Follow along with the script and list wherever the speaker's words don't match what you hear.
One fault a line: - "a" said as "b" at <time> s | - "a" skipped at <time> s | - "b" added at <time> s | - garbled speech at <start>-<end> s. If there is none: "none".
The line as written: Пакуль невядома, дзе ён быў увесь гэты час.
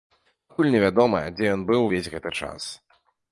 none